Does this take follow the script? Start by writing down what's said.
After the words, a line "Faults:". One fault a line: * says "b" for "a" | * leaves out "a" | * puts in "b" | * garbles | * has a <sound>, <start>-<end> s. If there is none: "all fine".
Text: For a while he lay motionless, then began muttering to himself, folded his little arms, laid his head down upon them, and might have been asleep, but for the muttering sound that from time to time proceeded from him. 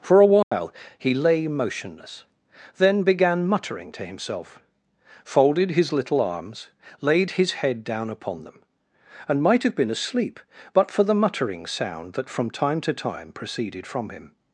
For a while he lay motionless, then began muttering to himself, folded his little arms, laid his head down upon them, and might have been asleep, but for the muttering sound that from time to time proceeded from him.
Faults:
* has a dropout, 0.4-0.5 s